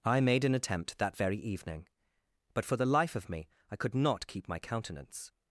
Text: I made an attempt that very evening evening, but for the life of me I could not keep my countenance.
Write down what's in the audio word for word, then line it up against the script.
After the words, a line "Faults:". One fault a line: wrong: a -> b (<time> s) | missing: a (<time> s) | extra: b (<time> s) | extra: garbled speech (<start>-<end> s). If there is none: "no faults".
I made an attempt that very evening, but for the life of me I could not keep my countenance.
Faults:
missing: evening (1.9 s)